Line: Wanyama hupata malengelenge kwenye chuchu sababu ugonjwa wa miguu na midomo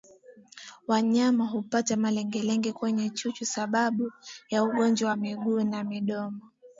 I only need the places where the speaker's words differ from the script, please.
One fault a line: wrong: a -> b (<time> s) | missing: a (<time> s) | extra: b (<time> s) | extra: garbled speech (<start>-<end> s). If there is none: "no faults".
extra: ya (4.5 s)